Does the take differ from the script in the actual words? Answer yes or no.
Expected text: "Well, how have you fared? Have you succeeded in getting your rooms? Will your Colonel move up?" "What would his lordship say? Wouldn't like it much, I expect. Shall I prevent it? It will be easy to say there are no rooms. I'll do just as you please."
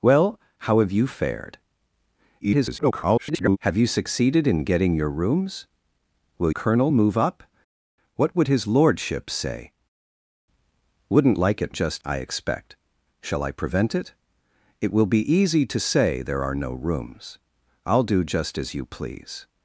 yes